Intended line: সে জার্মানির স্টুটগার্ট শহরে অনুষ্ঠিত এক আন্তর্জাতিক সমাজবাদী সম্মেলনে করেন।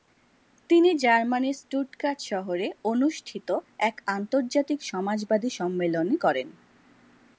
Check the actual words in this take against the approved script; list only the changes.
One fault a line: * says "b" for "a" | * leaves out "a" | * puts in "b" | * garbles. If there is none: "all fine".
* says "তিনি" for "সে"